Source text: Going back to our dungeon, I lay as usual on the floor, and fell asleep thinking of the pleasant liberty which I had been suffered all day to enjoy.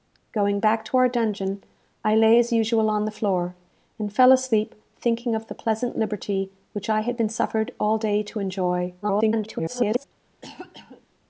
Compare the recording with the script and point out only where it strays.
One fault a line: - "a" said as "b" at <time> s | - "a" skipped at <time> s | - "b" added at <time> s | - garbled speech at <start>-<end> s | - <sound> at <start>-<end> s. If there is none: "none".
- garbled speech at 9.0-10.0 s
- cough at 10.4-11.1 s